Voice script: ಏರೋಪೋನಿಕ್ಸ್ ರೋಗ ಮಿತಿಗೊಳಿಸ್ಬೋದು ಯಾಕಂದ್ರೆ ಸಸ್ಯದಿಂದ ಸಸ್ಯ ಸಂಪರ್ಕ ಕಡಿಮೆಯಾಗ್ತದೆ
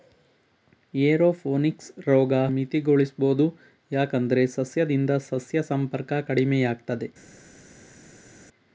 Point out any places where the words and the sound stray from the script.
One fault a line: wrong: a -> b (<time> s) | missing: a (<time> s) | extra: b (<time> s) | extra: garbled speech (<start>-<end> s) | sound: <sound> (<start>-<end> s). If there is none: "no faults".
no faults